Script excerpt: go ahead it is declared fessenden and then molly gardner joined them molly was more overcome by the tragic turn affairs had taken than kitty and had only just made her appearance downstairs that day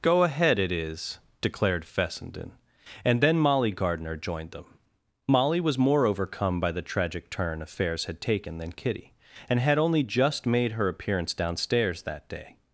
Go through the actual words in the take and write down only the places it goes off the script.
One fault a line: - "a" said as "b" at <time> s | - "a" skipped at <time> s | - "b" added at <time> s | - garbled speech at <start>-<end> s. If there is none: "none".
none